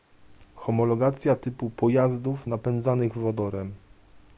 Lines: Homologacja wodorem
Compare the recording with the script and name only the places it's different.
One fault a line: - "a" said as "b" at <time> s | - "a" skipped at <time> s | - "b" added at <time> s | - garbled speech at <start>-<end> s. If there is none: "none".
- "typu pojazdów napędzanych" added at 1.3 s